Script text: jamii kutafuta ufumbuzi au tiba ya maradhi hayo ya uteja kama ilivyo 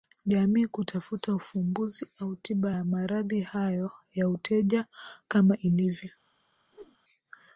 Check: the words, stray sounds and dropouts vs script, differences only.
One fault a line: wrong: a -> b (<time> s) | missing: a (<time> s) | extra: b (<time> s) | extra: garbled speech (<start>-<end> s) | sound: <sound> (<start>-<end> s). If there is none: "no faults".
sound: whoosh (6.7-7.0 s)